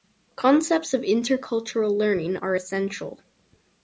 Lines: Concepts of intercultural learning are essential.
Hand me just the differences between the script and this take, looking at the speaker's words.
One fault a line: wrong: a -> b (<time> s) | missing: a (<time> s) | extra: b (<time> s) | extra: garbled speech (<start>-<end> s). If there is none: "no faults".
no faults